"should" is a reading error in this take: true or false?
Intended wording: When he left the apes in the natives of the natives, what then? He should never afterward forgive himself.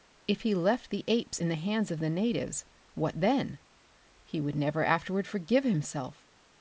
true